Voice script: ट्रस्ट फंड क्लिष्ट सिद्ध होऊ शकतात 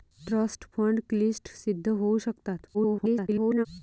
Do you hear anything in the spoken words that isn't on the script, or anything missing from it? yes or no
yes